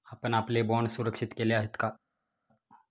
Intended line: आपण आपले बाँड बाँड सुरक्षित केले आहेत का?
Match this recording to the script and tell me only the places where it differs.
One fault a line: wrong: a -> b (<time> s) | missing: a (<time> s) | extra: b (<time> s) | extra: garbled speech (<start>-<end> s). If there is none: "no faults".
missing: बाँड (0.9 s)